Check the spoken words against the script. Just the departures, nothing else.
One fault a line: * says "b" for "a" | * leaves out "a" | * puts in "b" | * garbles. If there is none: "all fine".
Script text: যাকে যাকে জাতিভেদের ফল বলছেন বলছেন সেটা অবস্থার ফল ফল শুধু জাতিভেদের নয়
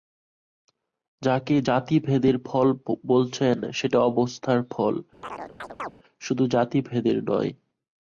* leaves out "যাকে"
* leaves out "বলছেন"
* leaves out "ফল"